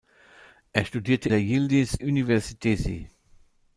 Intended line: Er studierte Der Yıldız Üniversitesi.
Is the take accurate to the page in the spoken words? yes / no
yes